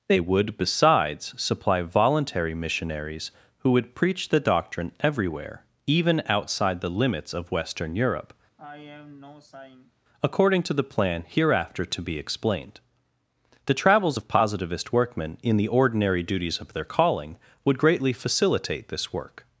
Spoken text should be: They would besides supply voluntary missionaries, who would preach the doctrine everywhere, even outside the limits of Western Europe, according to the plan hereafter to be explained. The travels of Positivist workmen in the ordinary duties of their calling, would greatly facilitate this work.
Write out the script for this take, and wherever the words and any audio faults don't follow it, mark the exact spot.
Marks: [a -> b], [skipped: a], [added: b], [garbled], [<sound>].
They would besides supply voluntary missionaries, who would preach the doctrine everywhere, even outside the limits of Western Europe, [sigh] according to the plan hereafter to be explained. The travels of Positivist workmen in the ordinary duties of their calling, would greatly facilitate this work.